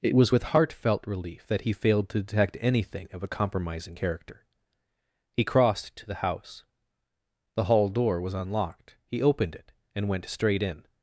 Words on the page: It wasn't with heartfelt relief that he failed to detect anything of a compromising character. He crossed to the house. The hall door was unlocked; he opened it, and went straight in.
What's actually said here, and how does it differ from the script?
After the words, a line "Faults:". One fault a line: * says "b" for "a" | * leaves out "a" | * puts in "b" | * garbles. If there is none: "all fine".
It was with heartfelt relief that he failed to detect anything of a compromising character. He crossed to the house. The hall door was unlocked; he opened it, and went straight in.
Faults:
* says "was" for "wasn't"